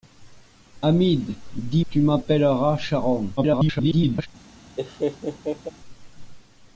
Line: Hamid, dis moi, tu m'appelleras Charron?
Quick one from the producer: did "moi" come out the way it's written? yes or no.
no